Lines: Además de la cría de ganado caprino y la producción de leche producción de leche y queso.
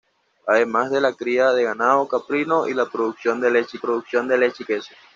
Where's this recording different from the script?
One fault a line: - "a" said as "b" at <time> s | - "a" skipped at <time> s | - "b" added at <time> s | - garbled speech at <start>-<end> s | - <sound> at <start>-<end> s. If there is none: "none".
none